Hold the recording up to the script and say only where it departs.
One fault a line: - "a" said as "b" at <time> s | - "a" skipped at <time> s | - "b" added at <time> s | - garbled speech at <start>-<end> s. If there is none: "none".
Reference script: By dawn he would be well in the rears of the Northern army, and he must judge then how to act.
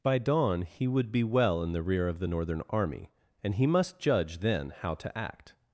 - "rears" said as "rear" at 1.8 s